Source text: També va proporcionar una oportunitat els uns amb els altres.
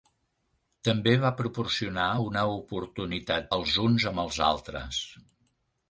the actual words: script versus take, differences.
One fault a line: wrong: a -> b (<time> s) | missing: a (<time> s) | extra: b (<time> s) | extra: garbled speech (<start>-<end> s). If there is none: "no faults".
no faults